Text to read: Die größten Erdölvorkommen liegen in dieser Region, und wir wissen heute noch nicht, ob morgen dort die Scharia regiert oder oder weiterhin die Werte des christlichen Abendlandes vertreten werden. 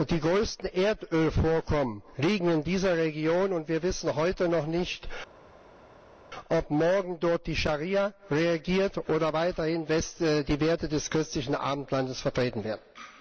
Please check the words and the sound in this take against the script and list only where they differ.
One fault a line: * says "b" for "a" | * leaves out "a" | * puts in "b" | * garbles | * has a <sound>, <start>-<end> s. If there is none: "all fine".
* leaves out "oder"